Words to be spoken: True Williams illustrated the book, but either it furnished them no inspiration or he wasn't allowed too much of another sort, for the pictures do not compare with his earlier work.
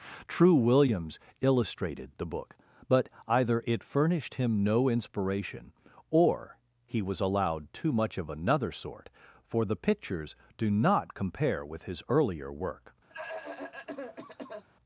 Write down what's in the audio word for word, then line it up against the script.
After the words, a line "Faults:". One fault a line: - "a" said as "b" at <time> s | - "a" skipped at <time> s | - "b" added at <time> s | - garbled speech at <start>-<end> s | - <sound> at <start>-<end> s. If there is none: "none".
True Williams illustrated the book, but either it furnished him no inspiration or he was allowed too much of another sort, for the pictures do not compare with his earlier work.
Faults:
- "them" said as "him" at 4.4 s
- "wasn't" said as "was" at 7.0 s
- cough at 13.1-14.6 s